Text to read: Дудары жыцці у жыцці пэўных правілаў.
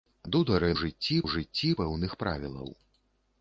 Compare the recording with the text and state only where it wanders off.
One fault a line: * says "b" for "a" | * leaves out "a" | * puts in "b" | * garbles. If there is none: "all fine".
all fine